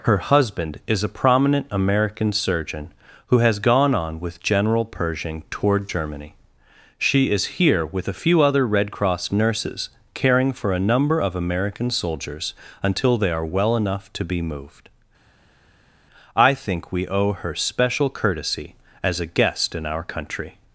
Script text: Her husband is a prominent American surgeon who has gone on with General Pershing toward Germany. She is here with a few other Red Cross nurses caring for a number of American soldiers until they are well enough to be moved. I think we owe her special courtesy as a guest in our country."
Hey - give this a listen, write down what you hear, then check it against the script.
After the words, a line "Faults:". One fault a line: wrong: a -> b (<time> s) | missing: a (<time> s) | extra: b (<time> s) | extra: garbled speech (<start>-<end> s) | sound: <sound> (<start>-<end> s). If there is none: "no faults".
Her husband is a prominent American surgeon who has gone on with General Pershing toward Germany. She is here with a few other Red Cross nurses caring for a number of American soldiers until they are well enough to be moved. I think we owe her special courtesy as a guest in our country."
Faults:
no faults